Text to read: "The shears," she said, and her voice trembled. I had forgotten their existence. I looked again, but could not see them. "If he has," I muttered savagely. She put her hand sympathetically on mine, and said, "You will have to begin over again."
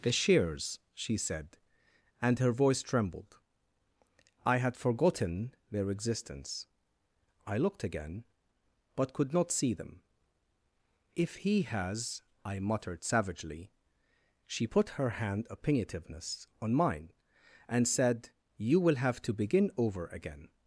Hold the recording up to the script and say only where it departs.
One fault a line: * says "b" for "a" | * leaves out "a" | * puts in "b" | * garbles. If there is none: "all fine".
* says "opinionativeness" for "sympathetically"